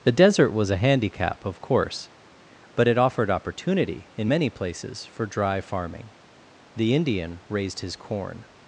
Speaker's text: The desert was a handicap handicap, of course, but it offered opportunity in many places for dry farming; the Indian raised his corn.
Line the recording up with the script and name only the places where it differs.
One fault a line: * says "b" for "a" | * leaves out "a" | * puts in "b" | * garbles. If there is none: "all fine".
* leaves out "handicap"